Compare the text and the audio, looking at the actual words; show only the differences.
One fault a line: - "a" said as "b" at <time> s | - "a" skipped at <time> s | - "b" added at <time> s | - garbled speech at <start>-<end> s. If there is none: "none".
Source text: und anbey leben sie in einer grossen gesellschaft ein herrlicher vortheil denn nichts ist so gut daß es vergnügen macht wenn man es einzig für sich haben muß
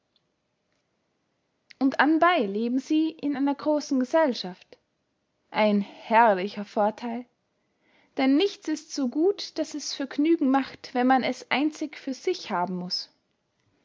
none